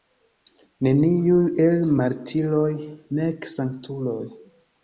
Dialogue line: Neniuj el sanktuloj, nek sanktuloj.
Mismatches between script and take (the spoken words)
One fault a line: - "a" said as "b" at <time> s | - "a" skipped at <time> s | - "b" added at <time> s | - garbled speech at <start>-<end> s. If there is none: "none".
- "sanktuloj" said as "martiroj" at 2.0 s